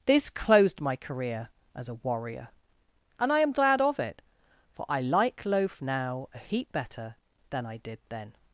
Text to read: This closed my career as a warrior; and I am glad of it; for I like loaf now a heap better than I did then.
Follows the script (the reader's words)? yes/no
yes